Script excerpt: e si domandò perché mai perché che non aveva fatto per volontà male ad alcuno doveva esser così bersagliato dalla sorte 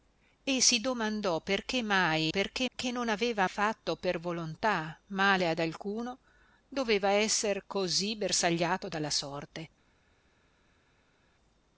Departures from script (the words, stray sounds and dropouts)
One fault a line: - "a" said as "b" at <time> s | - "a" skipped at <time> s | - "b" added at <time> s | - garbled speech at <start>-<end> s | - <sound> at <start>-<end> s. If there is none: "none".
none